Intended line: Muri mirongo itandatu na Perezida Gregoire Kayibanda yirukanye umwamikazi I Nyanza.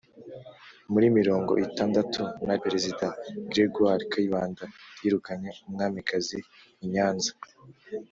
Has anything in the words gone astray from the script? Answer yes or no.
no